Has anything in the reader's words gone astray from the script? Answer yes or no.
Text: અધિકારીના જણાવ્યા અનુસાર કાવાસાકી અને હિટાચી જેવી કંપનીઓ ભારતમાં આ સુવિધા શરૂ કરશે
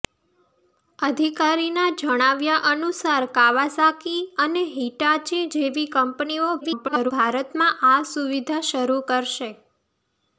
yes